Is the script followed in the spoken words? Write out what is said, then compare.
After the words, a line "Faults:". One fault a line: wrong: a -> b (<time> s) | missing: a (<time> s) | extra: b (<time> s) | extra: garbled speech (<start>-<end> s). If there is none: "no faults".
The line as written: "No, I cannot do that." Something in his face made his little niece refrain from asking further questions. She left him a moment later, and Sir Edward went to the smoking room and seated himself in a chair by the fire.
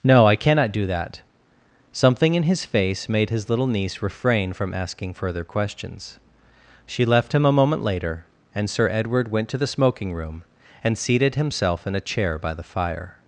"No, I cannot do that." Something in his face made his little niece refrain from asking further questions. She left him a moment later, and Sir Edward went to the smoking room and seated himself in a chair by the fire.
Faults:
no faults